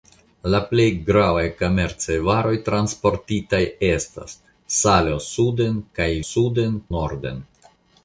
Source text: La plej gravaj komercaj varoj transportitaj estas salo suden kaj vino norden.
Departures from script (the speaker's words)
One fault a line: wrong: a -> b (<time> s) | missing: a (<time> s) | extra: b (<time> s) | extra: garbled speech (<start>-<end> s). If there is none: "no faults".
wrong: vino -> suden (6.3 s)